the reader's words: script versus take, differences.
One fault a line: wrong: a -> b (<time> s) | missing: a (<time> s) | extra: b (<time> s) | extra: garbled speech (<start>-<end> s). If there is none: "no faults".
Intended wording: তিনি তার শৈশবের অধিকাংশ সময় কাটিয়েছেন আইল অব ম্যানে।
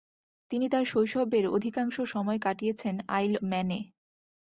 missing: অব (3.3 s)